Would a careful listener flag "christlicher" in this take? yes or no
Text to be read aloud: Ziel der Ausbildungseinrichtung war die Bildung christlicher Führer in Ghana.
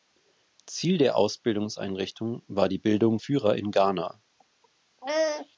yes